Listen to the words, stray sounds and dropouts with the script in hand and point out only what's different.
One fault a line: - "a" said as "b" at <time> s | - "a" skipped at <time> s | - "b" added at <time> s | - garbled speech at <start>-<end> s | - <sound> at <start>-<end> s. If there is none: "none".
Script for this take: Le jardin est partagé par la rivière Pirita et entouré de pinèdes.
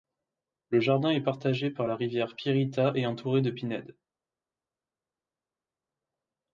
none